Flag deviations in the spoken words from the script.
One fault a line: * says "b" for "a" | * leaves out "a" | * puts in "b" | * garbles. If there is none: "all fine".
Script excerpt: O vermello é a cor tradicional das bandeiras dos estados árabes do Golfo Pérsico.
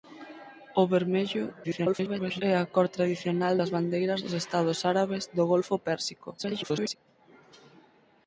* garbles
* garbles